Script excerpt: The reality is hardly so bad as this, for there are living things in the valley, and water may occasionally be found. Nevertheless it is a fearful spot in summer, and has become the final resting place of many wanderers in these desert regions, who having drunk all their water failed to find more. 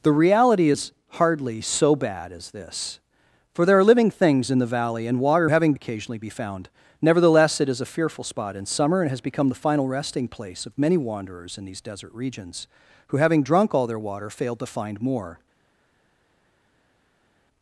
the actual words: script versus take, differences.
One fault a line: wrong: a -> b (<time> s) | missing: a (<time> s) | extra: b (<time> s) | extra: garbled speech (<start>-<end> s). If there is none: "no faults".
wrong: may -> having (5.5 s)